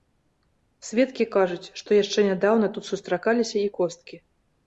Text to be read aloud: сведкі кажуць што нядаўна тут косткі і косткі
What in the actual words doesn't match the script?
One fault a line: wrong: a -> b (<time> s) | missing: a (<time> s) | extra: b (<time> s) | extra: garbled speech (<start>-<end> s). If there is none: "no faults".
extra: яшчэ (2.0 s)
wrong: косткі -> сустракаліся (2.9 s)